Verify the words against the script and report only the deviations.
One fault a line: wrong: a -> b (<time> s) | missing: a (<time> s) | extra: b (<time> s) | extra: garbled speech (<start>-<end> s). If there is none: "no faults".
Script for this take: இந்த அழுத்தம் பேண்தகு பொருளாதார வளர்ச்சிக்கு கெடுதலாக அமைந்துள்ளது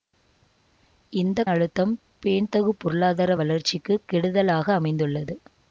no faults